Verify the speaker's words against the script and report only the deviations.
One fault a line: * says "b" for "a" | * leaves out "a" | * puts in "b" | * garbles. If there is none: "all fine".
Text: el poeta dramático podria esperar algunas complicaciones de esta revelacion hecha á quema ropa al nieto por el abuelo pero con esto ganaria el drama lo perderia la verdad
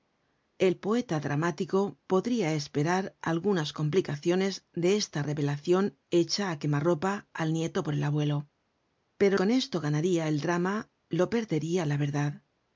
all fine